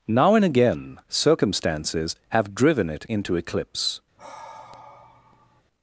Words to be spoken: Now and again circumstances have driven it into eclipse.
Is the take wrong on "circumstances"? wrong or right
right